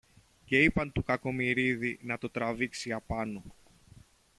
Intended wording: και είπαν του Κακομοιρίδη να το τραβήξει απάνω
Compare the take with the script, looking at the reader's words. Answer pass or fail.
pass